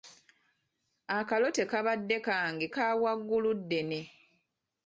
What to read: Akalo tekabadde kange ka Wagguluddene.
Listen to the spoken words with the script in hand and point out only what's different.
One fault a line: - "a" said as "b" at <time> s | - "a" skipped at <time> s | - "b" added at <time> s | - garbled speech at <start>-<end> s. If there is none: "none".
none